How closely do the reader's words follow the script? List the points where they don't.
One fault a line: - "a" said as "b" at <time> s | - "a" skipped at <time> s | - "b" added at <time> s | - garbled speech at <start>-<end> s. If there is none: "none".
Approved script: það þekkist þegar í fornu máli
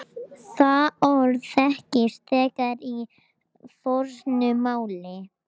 - "orð" added at 1.1 s